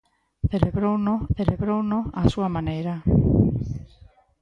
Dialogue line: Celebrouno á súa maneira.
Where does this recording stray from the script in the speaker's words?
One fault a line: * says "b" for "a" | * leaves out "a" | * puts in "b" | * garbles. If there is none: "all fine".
* puts in "celebrouno"